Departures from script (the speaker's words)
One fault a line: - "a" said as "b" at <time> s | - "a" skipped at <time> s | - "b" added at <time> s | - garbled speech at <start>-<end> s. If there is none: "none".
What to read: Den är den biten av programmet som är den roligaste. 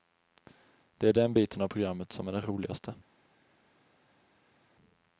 - "Den" said as "Det" at 1.0 s